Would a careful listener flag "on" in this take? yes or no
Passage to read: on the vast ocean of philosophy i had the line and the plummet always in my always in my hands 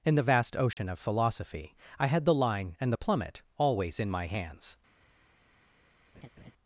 yes